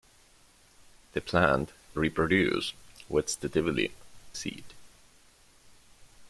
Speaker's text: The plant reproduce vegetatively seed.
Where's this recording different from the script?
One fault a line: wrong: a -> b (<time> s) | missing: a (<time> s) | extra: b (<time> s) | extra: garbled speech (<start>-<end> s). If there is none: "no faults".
no faults